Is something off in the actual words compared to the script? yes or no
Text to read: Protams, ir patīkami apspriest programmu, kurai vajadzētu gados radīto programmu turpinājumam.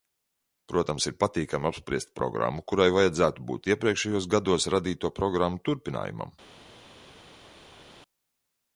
yes